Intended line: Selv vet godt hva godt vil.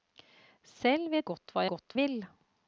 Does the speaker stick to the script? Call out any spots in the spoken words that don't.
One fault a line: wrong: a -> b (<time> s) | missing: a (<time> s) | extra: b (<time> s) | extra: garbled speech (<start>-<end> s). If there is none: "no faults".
no faults